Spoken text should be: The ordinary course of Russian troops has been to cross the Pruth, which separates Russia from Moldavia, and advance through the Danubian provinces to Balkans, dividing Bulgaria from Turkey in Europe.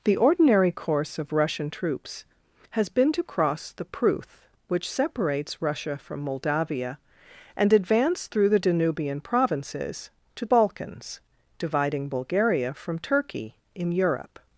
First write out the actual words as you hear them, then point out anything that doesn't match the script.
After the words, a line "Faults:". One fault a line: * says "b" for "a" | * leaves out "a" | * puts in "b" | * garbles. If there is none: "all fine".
The ordinary course of Russian troops has been to cross the Pruth, which separates Russia from Moldavia, and advance through the Danubian provinces to Balkans, dividing Bulgaria from Turkey in Europe.
Faults:
all fine